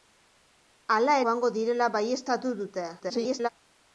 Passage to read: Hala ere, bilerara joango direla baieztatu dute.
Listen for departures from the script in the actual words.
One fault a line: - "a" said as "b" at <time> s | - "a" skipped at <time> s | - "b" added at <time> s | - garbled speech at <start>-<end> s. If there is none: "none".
- "ere bilerara" skipped at 1.2 s
- garbled speech at 3.0-3.5 s